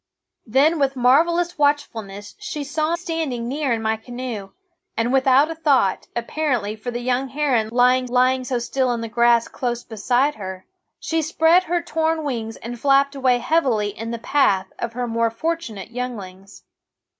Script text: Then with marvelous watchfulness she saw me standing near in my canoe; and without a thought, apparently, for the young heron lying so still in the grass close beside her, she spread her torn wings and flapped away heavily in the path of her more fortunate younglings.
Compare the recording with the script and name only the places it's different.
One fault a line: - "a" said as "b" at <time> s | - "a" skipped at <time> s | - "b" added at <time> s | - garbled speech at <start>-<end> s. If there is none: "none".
- "me" skipped at 3.0 s
- "lying" added at 8.1 s